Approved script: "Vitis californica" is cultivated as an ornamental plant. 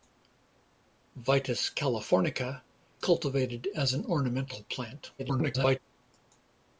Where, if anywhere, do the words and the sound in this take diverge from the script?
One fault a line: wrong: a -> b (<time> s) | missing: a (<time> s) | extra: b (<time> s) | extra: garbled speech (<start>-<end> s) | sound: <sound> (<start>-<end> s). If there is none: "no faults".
missing: is (2.6 s)
extra: garbled speech (5.2-5.8 s)